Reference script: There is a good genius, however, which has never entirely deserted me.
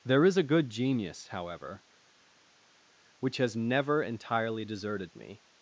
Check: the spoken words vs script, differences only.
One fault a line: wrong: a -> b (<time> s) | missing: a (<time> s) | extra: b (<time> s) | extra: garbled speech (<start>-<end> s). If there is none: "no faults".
no faults